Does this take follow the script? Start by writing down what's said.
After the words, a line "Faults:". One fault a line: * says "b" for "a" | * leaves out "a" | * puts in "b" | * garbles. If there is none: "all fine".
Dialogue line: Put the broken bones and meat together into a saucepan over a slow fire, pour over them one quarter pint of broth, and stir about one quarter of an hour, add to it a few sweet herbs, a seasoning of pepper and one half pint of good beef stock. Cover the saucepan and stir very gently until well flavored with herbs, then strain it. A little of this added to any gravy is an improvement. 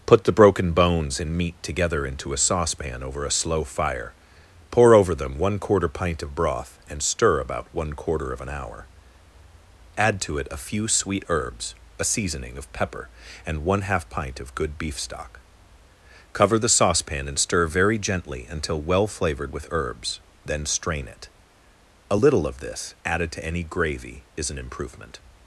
Put the broken bones and meat together into a saucepan over a slow fire, pour over them one quarter pint of broth, and stir about one quarter of an hour, add to it a few sweet herbs, a seasoning of pepper and one half pint of good beef stock. Cover the saucepan and stir very gently until well flavored with herbs, then strain it. A little of this added to any gravy is an improvement.
Faults:
all fine